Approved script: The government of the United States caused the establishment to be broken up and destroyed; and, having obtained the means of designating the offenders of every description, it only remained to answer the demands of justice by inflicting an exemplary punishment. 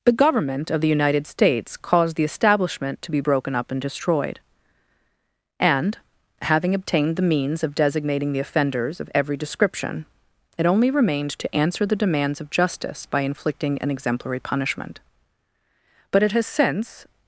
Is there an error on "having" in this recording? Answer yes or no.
no